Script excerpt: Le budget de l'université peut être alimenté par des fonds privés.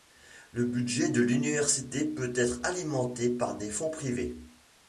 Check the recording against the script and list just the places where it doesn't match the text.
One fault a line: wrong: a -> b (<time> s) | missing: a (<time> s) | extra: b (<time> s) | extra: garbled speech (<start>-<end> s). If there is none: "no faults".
no faults